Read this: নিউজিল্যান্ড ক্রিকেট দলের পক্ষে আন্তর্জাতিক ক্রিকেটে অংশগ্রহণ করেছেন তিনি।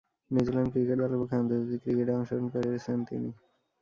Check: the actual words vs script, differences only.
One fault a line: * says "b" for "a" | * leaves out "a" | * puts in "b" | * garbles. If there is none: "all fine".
all fine